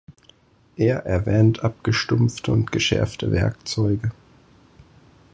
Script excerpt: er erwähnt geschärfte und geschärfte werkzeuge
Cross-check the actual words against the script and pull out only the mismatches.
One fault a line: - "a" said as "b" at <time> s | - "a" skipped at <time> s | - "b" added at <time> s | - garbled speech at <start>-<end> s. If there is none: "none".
- "geschärfte" said as "abgestumpfte" at 1.6 s